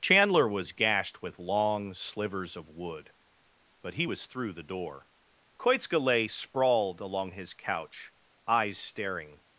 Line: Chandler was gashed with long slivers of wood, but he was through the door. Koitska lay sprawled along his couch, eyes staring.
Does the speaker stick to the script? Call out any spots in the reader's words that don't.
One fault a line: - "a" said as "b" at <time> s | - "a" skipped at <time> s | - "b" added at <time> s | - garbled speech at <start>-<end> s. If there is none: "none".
none